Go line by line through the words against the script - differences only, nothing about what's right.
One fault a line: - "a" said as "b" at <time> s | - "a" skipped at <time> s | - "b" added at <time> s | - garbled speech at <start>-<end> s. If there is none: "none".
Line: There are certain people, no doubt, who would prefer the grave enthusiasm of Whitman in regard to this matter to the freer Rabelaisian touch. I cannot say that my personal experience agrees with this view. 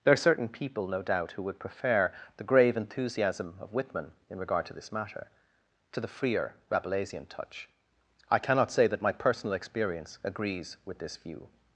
none